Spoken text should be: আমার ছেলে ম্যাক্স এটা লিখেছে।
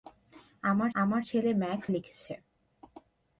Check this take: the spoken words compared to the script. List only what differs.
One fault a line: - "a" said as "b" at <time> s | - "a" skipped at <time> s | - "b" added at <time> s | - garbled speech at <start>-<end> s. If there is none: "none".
- "আমার" added at 0.9 s
- "এটা" skipped at 1.9 s